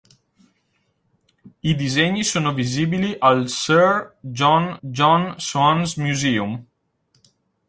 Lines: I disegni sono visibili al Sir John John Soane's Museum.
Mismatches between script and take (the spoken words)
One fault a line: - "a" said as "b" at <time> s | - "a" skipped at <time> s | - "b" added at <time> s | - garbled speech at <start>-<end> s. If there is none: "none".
none